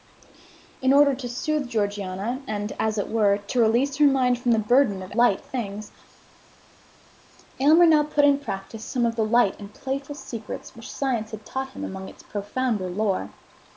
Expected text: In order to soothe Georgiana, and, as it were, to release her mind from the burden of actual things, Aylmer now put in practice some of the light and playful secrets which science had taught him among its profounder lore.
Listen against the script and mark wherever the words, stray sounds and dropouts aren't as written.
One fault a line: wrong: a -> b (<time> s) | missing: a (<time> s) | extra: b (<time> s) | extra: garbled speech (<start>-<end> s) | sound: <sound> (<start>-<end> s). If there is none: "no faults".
wrong: actual -> light (5.1 s)